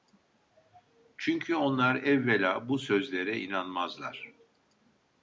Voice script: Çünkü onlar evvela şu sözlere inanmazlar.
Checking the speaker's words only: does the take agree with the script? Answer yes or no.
no